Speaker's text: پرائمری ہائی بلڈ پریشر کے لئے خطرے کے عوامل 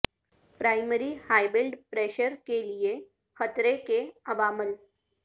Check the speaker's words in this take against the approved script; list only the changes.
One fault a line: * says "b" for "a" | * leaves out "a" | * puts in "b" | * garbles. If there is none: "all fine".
all fine